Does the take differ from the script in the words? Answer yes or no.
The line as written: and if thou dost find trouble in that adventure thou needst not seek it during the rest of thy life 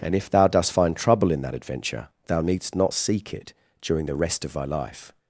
no